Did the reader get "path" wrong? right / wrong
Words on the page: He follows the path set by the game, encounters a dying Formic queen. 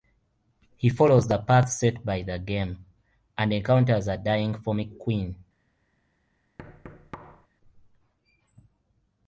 right